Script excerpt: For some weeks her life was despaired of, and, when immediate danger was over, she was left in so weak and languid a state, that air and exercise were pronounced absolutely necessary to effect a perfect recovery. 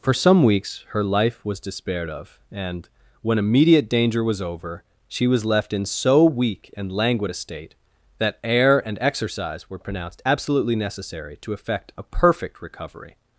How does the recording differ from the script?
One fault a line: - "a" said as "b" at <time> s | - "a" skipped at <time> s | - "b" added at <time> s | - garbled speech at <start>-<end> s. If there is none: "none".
none